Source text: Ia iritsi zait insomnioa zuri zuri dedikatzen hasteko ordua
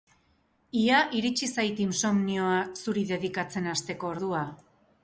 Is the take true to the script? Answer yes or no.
no